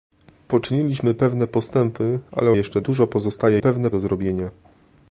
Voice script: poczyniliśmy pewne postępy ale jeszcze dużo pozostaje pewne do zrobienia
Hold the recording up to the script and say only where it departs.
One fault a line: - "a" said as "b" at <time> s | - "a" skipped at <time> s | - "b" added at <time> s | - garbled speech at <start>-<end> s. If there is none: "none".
none